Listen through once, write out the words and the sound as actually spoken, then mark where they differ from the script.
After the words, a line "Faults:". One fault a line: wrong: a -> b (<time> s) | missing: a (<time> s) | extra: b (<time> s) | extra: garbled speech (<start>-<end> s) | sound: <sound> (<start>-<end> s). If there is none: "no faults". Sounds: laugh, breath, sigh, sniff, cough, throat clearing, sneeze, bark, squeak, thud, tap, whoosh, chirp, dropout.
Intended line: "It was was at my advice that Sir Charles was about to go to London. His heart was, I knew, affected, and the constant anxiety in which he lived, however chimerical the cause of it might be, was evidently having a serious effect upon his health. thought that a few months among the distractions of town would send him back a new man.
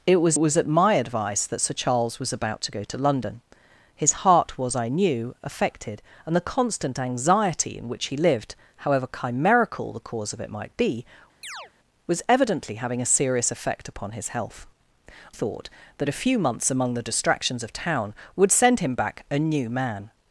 "It was was at my advice that Sir Charles was about to go to London. His heart was, I knew, affected, and the constant anxiety in which he lived, however chimerical the cause of it might be, was evidently having a serious effect upon his health. thought that a few months among the distractions of town would send him back a new man.
Faults:
sound: chirp (11.4-11.7 s)